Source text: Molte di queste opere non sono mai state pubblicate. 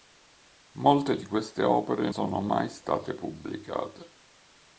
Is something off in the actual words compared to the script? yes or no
yes